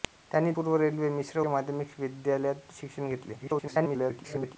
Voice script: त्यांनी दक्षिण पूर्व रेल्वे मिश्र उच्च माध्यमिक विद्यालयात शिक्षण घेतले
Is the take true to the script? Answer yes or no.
no